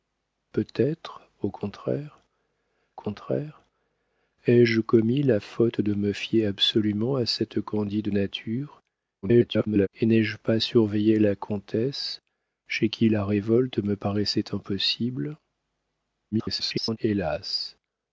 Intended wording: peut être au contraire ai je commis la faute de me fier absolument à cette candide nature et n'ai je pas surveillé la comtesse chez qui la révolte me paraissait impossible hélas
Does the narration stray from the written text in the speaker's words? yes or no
yes